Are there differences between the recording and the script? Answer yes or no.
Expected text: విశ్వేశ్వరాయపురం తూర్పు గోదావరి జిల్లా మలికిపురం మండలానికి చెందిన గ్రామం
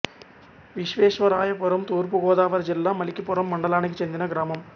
no